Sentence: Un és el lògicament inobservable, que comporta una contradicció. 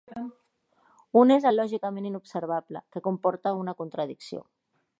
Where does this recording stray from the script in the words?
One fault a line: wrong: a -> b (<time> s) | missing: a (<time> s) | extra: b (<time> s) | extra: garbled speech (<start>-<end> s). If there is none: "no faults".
no faults